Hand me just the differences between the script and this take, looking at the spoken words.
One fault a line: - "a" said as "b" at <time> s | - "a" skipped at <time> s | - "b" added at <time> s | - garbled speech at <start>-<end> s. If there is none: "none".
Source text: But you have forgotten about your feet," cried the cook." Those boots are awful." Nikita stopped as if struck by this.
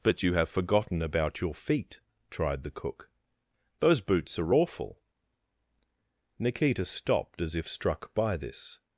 - "cried" said as "tried" at 2.3 s